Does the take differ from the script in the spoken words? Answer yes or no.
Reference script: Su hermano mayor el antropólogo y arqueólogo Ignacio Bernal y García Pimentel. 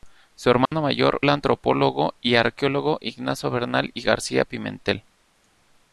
no